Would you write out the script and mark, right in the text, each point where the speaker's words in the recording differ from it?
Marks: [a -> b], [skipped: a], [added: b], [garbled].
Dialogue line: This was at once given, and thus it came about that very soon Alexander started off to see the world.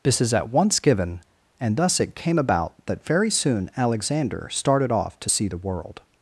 This [was -> is] at once given, and thus it came about that very soon Alexander started off to see the world.